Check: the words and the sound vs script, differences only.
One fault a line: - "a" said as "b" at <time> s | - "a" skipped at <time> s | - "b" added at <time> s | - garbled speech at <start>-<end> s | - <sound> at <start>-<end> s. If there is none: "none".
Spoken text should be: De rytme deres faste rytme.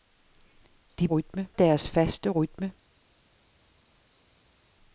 none